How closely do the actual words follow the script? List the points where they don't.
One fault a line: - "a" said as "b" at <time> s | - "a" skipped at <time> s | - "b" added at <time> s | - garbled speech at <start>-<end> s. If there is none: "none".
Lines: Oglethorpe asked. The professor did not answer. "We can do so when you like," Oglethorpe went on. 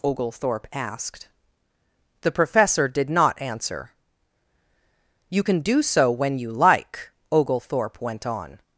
- "We" said as "You" at 5.3 s